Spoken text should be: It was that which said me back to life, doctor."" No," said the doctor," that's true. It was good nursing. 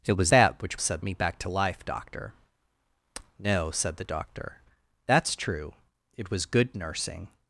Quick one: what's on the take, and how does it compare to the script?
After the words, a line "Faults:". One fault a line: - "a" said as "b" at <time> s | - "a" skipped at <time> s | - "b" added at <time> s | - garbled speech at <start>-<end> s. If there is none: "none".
It was that which said me back to life, doctor."" No," said the doctor," that's true. It was good nursing.
Faults:
none